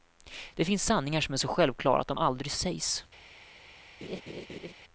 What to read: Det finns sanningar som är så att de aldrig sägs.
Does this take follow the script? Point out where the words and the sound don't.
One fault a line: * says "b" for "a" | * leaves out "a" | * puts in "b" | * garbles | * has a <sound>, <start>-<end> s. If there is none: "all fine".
* puts in "självklara"
* has a laugh, 4.0-4.7 s